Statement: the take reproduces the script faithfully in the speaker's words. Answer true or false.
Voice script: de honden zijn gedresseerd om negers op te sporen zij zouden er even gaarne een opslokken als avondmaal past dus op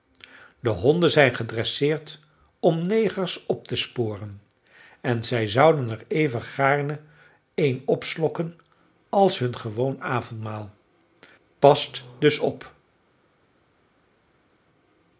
false